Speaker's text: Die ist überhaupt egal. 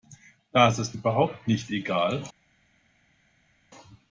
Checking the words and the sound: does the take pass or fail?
fail